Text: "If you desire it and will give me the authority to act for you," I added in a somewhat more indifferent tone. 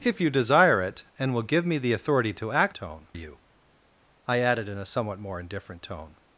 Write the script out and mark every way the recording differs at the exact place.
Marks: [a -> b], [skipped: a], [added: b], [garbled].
"If you desire it and will give me the authority to act [for -> tone] you," I added in a somewhat more indifferent tone.